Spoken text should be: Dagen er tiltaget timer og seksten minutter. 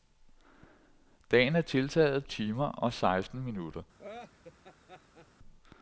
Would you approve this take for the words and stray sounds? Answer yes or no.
no